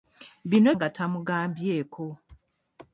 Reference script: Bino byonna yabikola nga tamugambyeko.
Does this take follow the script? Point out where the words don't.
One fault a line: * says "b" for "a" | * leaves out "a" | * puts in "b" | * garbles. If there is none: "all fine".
* leaves out "byonna yabikola"